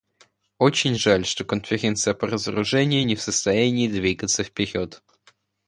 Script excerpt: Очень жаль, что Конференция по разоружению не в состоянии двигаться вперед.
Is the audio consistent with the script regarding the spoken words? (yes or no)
yes